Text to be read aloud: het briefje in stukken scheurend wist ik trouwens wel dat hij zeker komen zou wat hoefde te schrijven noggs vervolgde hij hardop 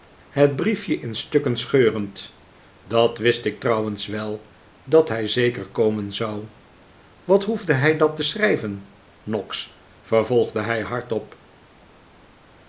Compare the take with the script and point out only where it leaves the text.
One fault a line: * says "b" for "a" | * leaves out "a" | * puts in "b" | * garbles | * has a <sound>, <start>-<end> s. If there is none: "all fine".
* puts in "dat"
* puts in "hij dat"